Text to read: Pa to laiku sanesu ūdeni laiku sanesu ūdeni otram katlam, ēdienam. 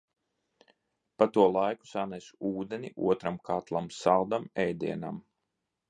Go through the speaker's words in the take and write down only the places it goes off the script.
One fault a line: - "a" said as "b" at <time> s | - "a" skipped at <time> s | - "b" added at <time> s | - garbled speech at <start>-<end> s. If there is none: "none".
- "laiku sanesu ūdeni" skipped at 2.9 s
- "saldam" added at 4.0 s